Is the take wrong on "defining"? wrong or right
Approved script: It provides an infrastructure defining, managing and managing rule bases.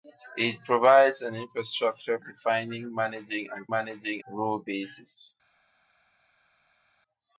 right